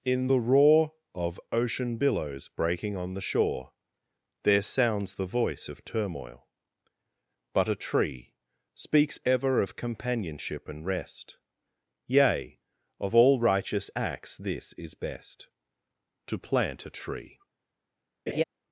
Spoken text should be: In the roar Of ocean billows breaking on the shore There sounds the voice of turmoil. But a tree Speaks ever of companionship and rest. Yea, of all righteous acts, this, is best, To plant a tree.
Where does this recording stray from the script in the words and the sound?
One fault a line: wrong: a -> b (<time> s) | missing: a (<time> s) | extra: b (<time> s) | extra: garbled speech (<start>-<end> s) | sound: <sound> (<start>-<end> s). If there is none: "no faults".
sound: laugh (18.3-18.4 s)